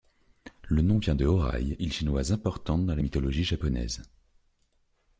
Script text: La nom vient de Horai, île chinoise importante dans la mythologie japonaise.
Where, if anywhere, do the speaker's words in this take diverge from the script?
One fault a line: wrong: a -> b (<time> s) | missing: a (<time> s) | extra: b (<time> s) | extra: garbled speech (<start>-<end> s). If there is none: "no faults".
wrong: La -> Le (0.6 s)